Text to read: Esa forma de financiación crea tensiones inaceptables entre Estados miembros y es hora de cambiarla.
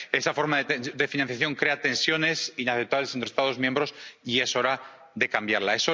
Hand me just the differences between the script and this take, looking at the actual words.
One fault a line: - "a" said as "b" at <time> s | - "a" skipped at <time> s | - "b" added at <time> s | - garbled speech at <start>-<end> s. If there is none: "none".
none